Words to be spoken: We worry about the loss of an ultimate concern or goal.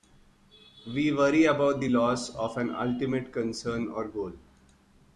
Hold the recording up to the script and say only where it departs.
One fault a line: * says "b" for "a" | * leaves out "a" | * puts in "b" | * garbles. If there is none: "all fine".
all fine